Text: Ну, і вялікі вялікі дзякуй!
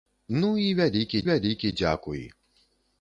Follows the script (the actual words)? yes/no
yes